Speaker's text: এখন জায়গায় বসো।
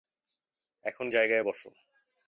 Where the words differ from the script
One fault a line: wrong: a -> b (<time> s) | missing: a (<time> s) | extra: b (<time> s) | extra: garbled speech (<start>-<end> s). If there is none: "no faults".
no faults